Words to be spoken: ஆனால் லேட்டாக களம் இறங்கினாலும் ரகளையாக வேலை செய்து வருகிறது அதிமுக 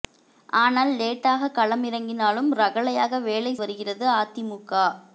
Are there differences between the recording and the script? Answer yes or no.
yes